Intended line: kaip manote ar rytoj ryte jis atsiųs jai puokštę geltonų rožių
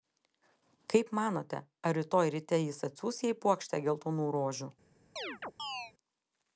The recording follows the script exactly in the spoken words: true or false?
true